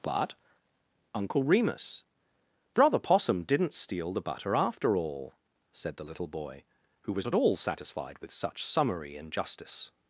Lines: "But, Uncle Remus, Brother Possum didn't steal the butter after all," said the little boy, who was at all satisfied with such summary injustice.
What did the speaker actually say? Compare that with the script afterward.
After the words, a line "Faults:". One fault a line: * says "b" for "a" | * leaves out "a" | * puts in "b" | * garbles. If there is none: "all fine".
"But, Uncle Remus, Brother Possum didn't steal the butter after all," said the little boy, who was at all satisfied with such summary injustice.
Faults:
all fine